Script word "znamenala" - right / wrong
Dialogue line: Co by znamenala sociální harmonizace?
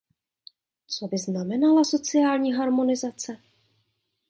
right